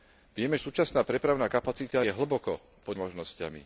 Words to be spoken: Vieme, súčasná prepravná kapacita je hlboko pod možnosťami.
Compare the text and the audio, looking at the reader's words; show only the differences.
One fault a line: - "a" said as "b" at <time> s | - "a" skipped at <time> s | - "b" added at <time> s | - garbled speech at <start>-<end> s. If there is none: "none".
none